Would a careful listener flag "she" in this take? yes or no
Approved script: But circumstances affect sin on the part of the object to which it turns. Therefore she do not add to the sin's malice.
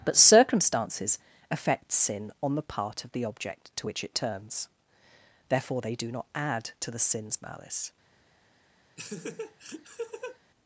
yes